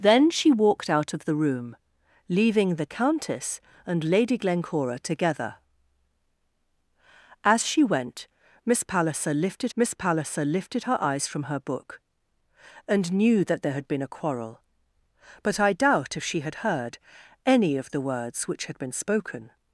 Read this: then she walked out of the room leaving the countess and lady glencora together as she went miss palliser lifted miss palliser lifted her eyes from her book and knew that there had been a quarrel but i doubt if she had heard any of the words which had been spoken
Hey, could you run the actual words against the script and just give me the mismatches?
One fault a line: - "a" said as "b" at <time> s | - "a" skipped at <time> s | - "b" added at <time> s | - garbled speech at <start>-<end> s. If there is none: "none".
none